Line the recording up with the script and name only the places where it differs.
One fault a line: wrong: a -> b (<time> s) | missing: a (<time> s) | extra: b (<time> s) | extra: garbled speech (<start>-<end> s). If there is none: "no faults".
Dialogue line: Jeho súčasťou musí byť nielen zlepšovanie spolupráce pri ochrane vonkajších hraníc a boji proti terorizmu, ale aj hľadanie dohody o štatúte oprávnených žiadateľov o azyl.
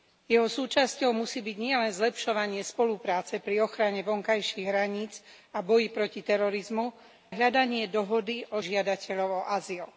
missing: ale (6.8 s)
missing: štatúte oprávnených (8.6 s)